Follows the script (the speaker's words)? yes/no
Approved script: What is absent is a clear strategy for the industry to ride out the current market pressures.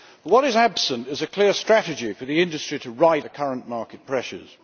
no